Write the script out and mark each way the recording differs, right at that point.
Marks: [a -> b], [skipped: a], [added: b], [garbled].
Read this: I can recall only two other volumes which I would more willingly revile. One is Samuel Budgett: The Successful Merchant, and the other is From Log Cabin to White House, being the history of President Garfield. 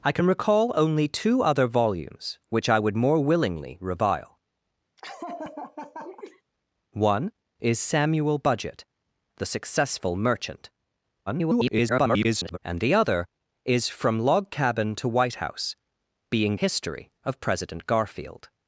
I can recall only two other volumes which I would more willingly revile. One is Samuel Budgett: The Successful Merchant, [garbled] and the other is From Log Cabin to White House, being [skipped: the] history of President Garfield.